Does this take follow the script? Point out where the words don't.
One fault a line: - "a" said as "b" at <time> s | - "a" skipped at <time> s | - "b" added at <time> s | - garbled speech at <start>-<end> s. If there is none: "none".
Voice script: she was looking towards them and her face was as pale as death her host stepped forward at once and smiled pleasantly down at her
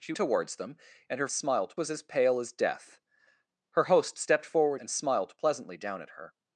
- "was looking" skipped at 0.1 s
- "face" said as "smiled" at 1.3 s
- "at once" skipped at 4.8 s